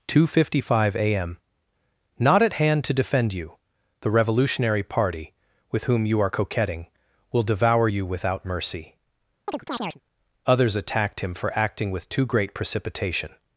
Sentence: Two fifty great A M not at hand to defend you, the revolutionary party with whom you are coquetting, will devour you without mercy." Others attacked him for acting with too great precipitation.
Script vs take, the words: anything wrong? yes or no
yes